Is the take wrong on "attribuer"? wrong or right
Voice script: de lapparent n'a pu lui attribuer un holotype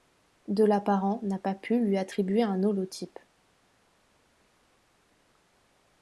right